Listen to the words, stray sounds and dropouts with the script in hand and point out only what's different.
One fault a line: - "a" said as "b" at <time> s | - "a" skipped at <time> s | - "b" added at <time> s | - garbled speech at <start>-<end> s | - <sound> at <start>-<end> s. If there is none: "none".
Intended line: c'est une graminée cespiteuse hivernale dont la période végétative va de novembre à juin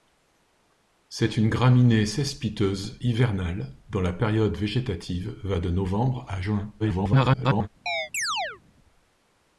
- garbled speech at 6.8-7.7 s
- chirp at 7.9-8.6 s